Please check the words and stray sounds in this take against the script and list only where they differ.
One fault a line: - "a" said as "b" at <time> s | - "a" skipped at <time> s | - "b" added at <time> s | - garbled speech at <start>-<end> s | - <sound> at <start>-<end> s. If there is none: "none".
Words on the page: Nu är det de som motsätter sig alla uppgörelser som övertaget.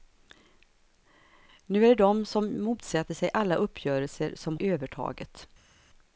none